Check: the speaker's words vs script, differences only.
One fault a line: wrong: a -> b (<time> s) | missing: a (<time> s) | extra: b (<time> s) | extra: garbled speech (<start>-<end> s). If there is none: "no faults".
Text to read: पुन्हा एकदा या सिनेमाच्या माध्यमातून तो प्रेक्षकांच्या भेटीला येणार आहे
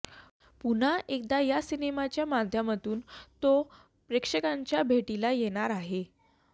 no faults